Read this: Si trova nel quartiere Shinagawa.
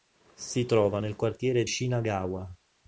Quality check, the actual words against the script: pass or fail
pass